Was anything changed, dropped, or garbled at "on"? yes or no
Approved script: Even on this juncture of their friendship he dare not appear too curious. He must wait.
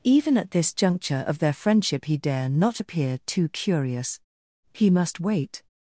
yes